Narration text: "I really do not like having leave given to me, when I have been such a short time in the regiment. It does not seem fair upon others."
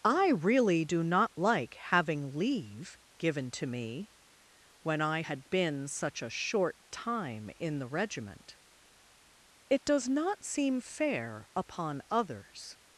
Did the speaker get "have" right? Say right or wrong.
wrong